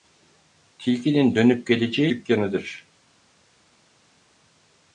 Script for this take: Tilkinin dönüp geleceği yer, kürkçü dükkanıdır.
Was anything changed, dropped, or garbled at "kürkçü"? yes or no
yes